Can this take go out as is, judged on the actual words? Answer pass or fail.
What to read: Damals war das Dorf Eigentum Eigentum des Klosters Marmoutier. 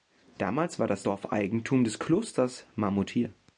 fail